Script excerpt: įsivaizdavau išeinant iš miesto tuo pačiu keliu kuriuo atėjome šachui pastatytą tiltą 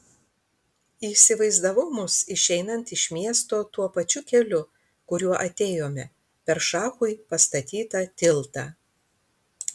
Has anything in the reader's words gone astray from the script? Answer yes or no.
yes